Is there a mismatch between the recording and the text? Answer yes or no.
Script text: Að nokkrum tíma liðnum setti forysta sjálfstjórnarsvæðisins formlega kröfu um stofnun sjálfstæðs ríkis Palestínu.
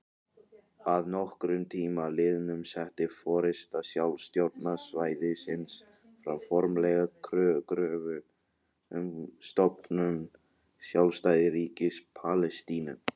yes